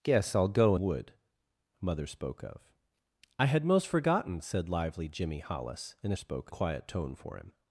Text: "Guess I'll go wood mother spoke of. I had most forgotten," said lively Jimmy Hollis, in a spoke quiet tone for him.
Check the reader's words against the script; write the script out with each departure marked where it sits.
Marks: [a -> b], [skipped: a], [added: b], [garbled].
"Guess I'll go wood mother spoke of. I had most forgotten," said lively Jimmy Hollis, in a spoke quiet tone for him.